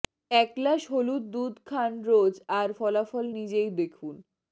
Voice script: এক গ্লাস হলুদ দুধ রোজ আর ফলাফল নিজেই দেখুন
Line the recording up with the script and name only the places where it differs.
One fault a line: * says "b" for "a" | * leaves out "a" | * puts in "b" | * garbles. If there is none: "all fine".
* puts in "খান"